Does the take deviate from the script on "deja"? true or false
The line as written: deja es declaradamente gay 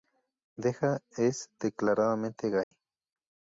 false